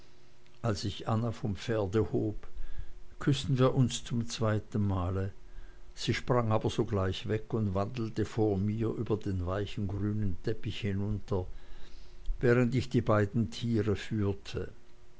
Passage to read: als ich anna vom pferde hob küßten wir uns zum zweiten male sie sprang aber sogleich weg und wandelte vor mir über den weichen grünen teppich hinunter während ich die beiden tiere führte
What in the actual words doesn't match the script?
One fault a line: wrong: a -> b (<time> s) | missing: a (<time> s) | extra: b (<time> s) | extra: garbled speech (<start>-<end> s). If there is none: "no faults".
no faults